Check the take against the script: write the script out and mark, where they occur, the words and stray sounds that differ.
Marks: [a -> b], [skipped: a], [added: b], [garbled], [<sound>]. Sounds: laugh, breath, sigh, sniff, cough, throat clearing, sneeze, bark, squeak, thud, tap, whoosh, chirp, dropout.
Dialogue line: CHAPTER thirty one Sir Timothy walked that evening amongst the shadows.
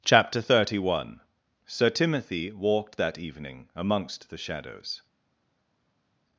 CHAPTER thirty one Sir Timothy walked that evening amongst the shadows.